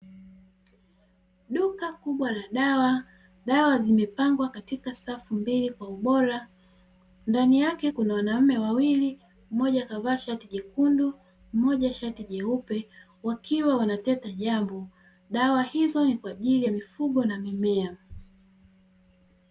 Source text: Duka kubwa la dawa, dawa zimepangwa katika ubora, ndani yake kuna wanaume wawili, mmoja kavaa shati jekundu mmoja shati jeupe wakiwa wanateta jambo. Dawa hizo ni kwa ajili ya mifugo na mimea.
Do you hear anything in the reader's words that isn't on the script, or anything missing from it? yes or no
yes